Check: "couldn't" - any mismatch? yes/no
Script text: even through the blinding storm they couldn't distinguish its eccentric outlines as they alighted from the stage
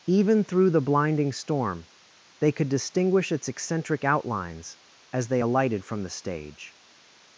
yes